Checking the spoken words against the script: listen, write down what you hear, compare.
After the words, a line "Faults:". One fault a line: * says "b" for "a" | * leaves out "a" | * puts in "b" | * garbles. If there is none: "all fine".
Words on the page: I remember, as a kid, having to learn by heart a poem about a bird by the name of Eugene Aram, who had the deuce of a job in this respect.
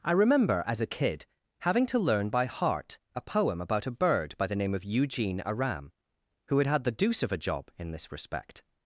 I remember, as a kid, having to learn by heart a poem about a bird by the name of Eugene Aram, who had had the deuce of a job in this respect.
Faults:
* puts in "had"